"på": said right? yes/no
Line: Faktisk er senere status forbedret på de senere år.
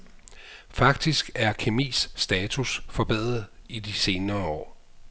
no